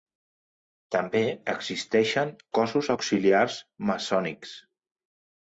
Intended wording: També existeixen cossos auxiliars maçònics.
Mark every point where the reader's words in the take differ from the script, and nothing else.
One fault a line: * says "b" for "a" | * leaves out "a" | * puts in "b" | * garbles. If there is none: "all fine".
all fine